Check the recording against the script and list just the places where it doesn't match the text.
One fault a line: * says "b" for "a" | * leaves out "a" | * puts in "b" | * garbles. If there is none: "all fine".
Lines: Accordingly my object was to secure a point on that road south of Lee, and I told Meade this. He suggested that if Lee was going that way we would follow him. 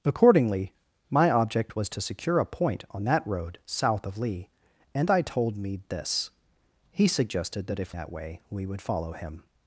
* leaves out "Lee was going"